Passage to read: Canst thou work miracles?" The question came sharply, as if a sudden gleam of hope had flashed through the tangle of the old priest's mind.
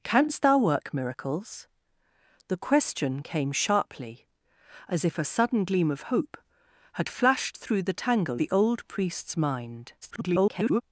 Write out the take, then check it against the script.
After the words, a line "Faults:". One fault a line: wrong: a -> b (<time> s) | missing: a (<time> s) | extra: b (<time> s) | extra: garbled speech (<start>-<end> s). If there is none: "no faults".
Canst thou work miracles?" The question came sharply, as if a sudden gleam of hope had flashed through the tangle the old priest's mind. [garbled]
Faults:
missing: of (8.4 s)
extra: garbled speech (10.0-10.8 s)